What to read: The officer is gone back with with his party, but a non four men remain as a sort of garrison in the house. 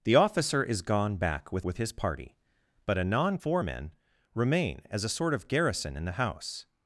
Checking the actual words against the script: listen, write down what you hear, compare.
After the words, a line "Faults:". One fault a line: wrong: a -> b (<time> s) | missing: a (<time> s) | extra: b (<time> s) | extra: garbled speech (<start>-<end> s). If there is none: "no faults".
The officer is gone back with with his party, but a non four men remain as a sort of garrison in the house.
Faults:
no faults